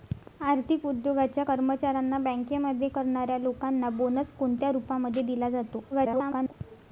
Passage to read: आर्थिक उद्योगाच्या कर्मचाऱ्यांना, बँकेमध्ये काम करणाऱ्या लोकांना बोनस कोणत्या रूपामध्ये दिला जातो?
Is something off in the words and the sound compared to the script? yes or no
yes